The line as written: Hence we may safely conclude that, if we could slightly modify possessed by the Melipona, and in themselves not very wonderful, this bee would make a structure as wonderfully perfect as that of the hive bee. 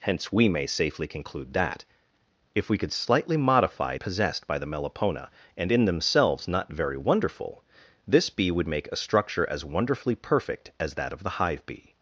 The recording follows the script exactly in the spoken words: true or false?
true